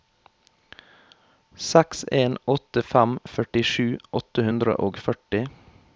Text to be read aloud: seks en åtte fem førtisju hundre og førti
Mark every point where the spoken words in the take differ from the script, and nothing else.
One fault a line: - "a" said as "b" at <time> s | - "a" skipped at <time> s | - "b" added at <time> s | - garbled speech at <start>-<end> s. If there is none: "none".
- "åtte" added at 4.2 s